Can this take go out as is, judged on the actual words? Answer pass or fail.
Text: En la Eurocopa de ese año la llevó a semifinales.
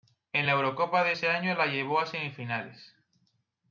pass